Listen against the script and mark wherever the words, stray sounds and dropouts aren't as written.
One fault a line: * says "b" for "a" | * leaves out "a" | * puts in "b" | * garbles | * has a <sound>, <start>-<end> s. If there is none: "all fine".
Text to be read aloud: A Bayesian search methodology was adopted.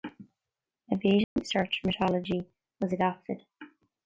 * has a dropout, 1.2-1.4 s